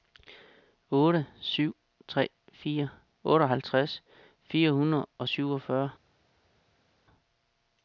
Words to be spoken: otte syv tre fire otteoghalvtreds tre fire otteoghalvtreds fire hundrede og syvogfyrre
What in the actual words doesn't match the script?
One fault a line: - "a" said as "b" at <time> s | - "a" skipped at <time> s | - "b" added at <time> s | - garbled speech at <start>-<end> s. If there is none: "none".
- "tre fire otteoghalvtreds" skipped at 4.0 s